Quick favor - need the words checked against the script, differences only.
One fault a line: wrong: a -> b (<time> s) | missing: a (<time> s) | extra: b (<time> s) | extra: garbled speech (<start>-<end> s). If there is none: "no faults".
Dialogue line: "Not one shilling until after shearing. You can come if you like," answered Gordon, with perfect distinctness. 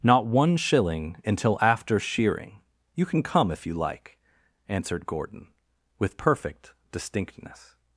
no faults